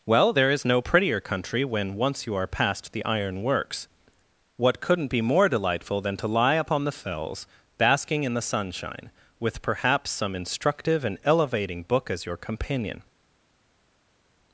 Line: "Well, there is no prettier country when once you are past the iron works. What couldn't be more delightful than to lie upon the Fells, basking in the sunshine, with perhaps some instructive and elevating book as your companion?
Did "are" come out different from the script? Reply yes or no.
no